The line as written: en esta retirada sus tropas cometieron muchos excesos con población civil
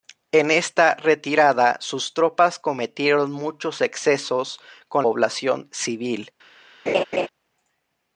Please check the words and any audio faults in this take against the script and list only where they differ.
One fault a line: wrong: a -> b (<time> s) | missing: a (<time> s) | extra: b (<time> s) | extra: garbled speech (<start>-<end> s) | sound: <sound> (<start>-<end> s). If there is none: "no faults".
sound: laugh (6.9-7.3 s)